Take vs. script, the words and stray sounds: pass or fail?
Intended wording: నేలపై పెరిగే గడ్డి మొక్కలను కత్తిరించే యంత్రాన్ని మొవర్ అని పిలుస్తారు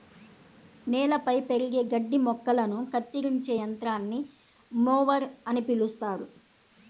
pass